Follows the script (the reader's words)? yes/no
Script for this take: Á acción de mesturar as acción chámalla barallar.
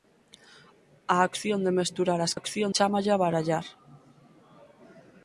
yes